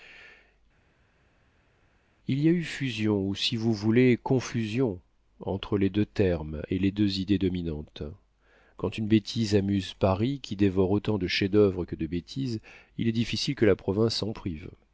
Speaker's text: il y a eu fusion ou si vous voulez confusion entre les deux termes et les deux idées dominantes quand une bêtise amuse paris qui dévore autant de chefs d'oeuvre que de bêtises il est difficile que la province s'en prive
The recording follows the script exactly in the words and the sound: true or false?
true